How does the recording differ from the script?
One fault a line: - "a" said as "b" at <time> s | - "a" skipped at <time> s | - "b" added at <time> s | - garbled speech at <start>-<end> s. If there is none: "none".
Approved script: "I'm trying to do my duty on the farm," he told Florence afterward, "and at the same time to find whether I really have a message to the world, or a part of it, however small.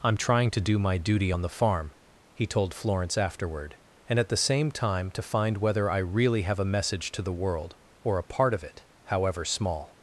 none